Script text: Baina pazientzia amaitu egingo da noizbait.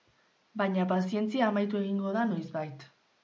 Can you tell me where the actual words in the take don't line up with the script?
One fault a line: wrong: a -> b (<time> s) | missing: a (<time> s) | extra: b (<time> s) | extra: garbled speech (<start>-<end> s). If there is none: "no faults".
no faults